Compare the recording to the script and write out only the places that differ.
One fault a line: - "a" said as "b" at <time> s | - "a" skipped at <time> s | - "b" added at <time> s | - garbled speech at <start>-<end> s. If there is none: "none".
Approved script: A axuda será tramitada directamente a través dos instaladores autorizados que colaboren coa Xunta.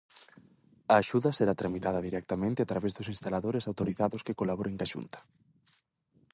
none